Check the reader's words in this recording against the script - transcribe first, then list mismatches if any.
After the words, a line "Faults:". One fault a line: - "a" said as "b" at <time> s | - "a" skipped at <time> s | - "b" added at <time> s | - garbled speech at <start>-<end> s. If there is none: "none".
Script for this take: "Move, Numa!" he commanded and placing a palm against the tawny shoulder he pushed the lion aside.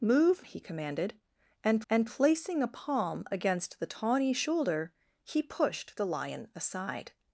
"Move!" He commanded and and placing a palm against the tawny shoulder he pushed the lion aside.
Faults:
- "Numa" skipped at 0.5 s
- "and" added at 1.9 s